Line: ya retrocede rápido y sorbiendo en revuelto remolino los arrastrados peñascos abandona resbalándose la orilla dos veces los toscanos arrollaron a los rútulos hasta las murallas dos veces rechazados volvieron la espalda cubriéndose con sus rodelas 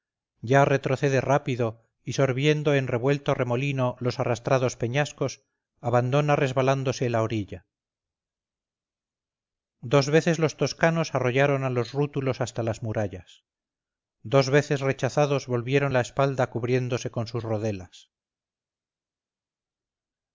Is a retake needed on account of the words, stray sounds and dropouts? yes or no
no